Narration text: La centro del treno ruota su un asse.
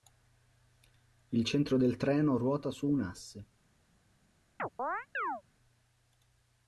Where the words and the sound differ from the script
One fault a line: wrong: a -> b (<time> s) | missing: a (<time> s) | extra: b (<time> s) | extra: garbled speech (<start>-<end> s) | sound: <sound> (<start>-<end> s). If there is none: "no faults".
wrong: La -> Il (1.3 s)
sound: chirp (4.6-5.4 s)